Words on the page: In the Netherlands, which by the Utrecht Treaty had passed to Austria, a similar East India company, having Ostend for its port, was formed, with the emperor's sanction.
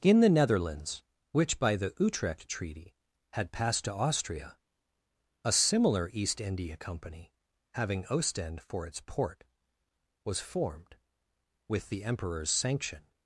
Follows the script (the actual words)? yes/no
yes